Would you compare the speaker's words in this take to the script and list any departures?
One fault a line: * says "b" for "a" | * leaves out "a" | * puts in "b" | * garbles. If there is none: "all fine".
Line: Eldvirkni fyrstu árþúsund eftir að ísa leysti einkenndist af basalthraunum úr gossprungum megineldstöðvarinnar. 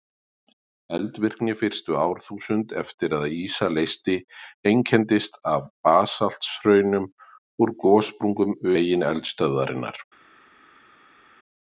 all fine